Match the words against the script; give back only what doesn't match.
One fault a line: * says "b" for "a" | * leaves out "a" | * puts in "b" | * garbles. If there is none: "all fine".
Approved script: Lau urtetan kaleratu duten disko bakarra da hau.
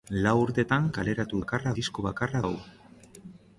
* says "bakarra" for "duten"
* leaves out "da"